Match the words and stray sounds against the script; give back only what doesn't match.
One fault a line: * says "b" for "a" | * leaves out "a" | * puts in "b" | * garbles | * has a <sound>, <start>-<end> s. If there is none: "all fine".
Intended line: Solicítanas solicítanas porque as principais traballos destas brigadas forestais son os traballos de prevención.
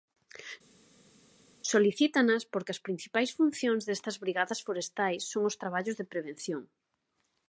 * leaves out "solicítanas"
* says "funcións" for "traballos"